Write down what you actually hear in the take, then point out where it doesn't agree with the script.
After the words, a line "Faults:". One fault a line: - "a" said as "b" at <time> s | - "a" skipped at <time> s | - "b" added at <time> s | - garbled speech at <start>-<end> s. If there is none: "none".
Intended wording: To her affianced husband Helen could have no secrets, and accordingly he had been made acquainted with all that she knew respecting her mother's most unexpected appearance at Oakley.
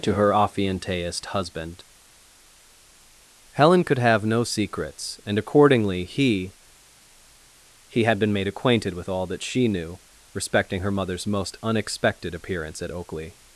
To her affianced husband Helen could have no secrets, and accordingly he he had been made acquainted with all that she knew respecting her mother's most unexpected appearance at Oakley.
Faults:
- "he" added at 7.9 s